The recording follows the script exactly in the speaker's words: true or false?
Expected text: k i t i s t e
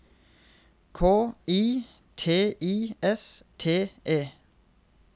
true